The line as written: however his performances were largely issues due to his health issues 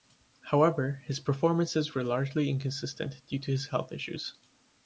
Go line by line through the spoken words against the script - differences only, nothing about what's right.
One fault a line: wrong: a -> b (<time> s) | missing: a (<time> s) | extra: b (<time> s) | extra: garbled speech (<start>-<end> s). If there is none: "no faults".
wrong: issues -> inconsistent (2.5 s)